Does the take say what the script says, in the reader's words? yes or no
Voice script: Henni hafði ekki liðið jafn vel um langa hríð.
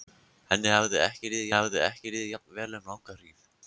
no